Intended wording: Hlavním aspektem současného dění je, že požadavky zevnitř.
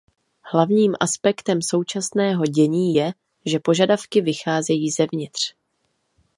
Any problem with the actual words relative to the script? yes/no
yes